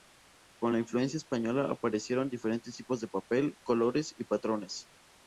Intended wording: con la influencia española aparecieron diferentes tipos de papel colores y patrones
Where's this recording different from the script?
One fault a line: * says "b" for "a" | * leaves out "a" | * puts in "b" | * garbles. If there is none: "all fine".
all fine